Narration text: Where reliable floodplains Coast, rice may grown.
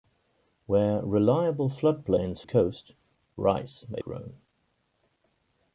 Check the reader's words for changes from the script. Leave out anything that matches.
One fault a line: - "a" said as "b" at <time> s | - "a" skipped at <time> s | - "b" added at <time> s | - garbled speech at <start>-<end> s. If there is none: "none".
none